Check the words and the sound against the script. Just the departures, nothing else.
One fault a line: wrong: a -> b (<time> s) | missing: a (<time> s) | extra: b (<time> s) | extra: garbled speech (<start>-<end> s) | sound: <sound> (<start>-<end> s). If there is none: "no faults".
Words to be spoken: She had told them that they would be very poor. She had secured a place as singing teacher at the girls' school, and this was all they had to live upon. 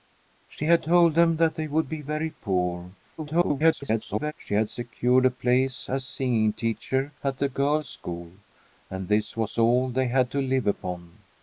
extra: garbled speech (3.2-4.3 s)